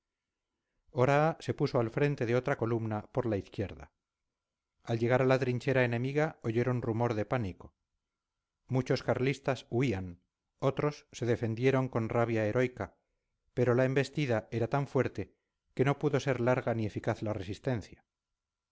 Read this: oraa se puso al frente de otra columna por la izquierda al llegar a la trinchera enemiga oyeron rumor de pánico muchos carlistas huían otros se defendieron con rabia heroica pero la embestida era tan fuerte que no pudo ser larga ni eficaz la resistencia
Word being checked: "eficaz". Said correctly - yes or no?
yes